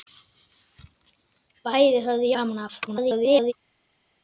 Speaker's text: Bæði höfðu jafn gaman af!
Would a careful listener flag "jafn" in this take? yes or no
yes